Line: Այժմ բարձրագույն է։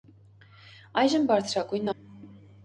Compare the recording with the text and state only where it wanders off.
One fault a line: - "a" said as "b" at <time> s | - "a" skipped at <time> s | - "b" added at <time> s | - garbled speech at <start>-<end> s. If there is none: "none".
none